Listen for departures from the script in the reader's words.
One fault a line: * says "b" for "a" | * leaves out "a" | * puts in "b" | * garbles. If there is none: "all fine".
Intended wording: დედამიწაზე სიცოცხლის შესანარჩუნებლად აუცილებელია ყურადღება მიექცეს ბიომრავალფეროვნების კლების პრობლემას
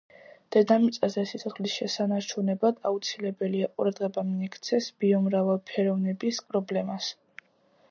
* leaves out "კლების"